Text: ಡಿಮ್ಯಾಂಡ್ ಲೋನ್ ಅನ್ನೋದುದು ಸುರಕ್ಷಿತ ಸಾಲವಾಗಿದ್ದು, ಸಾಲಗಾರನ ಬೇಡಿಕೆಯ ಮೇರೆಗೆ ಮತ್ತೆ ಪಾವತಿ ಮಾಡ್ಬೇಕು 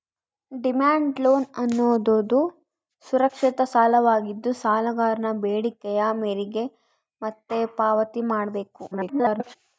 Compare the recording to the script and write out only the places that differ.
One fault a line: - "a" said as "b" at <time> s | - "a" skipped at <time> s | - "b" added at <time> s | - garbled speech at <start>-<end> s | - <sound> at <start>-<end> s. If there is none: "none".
- garbled speech at 8.9-9.6 s